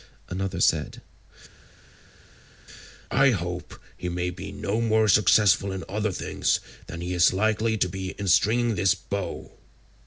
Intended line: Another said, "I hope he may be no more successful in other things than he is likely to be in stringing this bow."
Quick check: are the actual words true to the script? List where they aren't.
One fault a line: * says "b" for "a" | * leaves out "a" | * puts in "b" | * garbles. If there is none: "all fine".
all fine